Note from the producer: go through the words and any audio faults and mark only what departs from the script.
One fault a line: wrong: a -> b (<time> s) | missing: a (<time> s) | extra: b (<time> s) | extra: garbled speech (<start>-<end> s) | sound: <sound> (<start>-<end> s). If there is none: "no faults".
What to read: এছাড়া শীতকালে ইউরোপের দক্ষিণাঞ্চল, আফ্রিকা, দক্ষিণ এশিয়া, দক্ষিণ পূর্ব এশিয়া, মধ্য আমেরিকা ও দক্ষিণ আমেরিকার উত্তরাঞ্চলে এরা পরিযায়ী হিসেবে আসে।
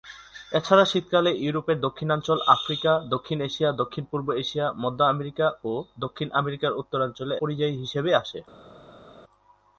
missing: এরা (7.3 s)